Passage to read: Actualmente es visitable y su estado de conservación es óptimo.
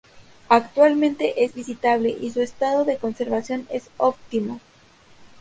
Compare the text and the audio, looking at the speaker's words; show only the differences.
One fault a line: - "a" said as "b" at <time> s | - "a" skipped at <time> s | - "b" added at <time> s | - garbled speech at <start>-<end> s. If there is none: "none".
none